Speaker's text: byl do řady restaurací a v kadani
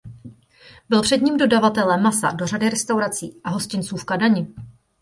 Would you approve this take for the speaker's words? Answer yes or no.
no